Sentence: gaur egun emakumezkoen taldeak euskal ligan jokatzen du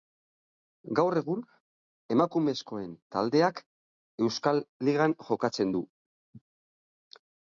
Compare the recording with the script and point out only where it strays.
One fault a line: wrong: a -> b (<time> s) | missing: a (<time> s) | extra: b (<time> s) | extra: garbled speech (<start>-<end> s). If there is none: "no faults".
no faults